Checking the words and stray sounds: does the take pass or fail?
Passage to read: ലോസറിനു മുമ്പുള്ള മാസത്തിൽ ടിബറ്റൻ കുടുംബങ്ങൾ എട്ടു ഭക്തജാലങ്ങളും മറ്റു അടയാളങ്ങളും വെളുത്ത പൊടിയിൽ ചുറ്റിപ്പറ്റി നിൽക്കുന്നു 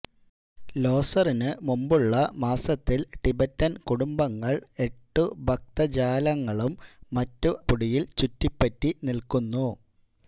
fail